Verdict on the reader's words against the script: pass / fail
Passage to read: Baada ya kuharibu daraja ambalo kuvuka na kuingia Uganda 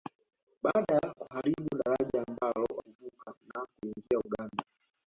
pass